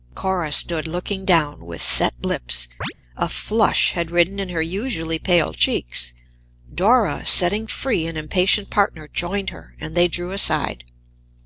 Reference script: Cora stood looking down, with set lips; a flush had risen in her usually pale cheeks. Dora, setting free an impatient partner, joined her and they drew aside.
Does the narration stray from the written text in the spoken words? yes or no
no